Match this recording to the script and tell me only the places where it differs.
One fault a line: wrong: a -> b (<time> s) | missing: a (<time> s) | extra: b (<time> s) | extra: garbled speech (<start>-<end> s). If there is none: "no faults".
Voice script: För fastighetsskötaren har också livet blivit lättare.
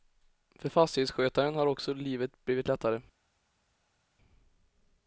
no faults